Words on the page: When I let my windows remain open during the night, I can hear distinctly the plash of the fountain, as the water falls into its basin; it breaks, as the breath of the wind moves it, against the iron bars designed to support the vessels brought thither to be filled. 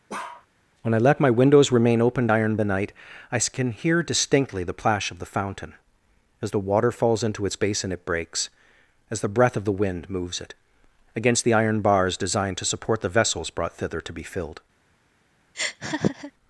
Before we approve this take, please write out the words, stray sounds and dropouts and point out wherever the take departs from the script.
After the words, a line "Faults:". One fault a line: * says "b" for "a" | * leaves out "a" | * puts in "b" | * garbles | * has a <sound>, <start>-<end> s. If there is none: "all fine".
When I let my windows remain open iron the night, I can hear distinctly the plash of the fountain, as the water falls into its basin; it breaks, as the breath of the wind moves it, against the iron bars designed to support the vessels brought thither to be filled.
Faults:
* has a bark, 0.1-0.5 s
* says "iron" for "during"
* has a laugh, 15.5-16.3 s